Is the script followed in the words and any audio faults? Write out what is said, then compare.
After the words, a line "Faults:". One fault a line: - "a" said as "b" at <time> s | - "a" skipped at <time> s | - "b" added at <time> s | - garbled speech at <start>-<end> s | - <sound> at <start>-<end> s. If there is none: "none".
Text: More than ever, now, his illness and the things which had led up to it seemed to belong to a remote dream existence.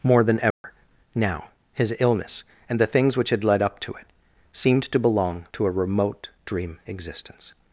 More than ever, now, his illness and the things which had led up to it seemed to belong to a remote dream existence.
Faults:
- dropout at 0.5-0.6 s